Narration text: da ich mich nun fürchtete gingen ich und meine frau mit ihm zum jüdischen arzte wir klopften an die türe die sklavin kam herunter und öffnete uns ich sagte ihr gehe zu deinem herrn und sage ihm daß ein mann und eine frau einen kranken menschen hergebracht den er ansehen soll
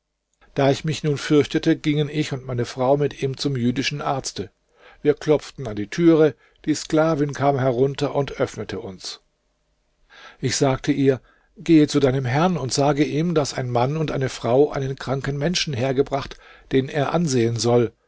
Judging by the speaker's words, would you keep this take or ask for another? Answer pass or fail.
pass